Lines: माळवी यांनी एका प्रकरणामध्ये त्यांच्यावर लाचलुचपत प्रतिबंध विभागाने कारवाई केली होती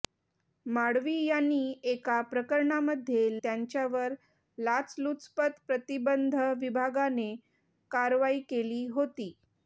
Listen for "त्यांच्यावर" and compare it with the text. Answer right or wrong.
right